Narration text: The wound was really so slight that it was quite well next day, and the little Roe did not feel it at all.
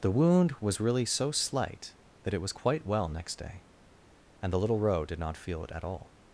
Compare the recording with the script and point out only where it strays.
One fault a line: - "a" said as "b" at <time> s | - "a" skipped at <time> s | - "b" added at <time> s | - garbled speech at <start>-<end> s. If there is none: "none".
none